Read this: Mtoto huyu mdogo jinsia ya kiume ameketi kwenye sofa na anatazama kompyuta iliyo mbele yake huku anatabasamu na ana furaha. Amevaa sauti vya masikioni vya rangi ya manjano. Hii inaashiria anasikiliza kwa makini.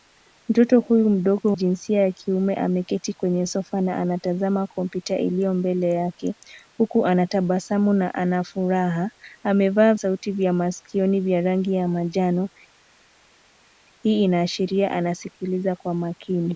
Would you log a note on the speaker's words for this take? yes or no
no